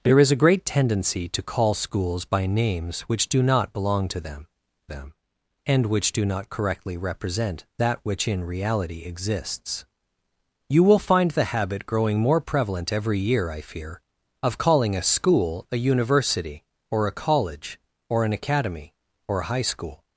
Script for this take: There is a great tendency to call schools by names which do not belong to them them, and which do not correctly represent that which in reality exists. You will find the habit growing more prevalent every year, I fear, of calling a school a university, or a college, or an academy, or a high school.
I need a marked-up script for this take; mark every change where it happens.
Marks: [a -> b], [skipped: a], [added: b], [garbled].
There is a great tendency to call schools by names which do not belong to them them, and which do not correctly represent that which in reality exists. You will find the habit growing more prevalent every year, I fear, of calling a school a university, or a college, or an academy, or a high school.